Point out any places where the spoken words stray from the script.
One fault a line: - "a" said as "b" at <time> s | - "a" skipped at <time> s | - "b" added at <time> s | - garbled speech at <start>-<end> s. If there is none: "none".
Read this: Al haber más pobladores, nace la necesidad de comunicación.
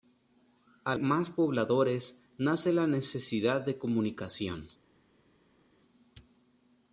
- "haber" skipped at 1.0 s